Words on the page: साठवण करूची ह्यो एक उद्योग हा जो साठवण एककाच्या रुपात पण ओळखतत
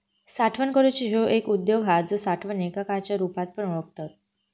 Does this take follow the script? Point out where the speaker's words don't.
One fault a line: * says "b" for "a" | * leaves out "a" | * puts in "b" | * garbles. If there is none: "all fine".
all fine